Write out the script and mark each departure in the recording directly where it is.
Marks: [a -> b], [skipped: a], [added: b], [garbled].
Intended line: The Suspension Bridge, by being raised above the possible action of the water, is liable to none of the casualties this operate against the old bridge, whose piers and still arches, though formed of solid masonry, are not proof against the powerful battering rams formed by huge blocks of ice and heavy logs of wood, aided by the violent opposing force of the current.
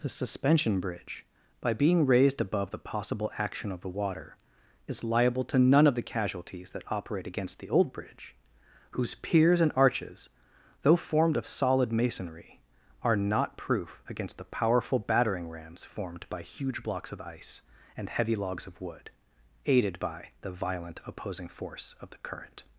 The Suspension Bridge, by being raised above the possible action of the water, is liable to none of the casualties [this -> that] operate against the old bridge, whose piers and [skipped: still] arches, though formed of solid masonry, are not proof against the powerful battering rams formed by huge blocks of ice and heavy logs of wood, aided by the violent opposing force of the current.